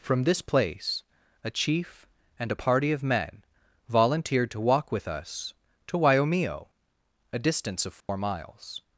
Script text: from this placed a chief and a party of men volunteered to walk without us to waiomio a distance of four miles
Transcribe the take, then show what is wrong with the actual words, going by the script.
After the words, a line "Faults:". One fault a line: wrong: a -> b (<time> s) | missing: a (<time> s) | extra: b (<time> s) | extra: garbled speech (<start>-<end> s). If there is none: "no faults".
from this place a chief and a party of men volunteered to walk with us to waiomio a distance of four miles
Faults:
wrong: placed -> place (0.4 s)
wrong: without -> with (4.9 s)